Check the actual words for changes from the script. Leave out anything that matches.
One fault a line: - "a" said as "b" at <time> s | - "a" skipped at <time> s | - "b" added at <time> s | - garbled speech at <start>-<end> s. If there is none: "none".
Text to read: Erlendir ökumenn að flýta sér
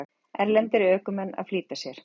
none